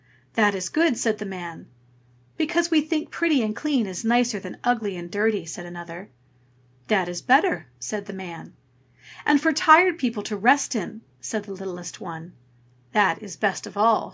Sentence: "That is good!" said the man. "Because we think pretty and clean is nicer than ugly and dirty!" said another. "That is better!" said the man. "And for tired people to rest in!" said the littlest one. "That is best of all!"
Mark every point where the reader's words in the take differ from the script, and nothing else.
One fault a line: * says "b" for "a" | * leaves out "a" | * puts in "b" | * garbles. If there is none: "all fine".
all fine